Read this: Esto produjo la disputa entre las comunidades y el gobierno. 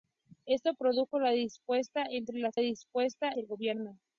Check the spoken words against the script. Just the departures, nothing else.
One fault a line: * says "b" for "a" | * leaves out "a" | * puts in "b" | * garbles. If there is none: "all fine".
* says "disputa" for "comunidades"